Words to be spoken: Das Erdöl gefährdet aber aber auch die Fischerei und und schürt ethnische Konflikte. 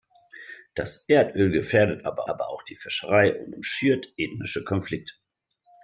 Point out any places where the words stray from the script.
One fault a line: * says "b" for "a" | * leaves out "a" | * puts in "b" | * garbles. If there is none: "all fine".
all fine